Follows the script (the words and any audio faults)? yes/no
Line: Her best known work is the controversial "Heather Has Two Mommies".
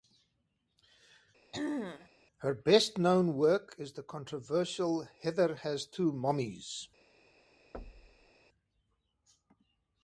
no